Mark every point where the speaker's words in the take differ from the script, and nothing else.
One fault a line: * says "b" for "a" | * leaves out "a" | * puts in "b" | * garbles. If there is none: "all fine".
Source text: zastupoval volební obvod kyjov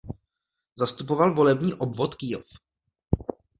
all fine